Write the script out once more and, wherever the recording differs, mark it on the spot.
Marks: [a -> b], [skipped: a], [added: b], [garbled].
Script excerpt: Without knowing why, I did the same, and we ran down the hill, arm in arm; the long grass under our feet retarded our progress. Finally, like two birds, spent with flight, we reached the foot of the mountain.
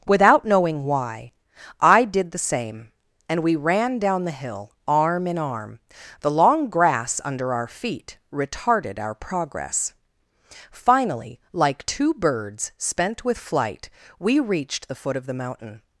Without knowing why, I did the same, and we ran down the hill, arm in arm; the long grass under our feet retarded our progress. Finally, like two birds, spent with flight, we reached the foot of the mountain.